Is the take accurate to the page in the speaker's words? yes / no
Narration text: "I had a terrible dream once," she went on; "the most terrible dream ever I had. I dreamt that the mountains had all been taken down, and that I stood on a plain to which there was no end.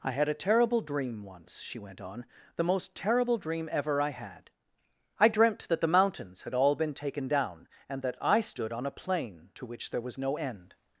yes